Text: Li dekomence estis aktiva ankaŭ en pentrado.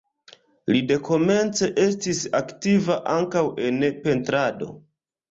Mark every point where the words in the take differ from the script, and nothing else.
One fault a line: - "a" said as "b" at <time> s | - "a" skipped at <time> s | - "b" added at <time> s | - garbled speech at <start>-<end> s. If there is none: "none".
none